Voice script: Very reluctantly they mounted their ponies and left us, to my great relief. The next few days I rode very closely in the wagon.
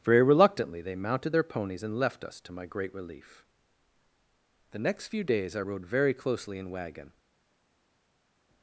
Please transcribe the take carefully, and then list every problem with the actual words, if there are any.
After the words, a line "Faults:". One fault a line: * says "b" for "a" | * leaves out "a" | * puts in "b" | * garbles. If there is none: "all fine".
Very reluctantly they mounted their ponies and left us, to my great relief. The next few days I rode very closely in wagon.
Faults:
* leaves out "the"